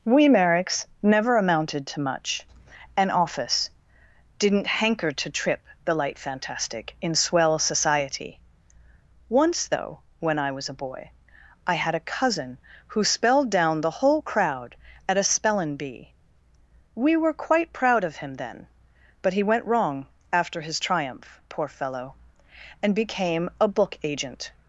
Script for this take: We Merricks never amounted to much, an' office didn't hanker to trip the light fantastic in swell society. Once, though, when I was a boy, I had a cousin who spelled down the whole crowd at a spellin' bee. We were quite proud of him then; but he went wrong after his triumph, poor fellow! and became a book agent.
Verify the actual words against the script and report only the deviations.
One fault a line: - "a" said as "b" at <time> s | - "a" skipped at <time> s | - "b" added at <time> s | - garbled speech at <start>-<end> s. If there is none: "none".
none